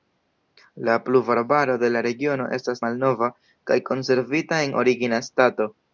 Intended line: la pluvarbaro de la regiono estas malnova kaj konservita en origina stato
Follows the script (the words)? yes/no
yes